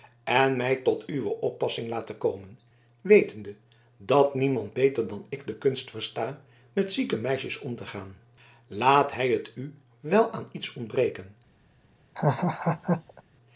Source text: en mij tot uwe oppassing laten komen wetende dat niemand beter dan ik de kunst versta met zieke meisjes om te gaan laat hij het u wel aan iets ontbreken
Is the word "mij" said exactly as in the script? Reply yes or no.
yes